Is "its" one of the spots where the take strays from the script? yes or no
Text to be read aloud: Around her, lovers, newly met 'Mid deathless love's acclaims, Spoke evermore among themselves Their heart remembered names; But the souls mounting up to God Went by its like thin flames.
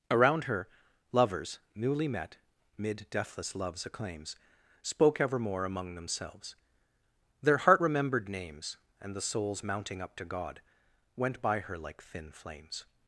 yes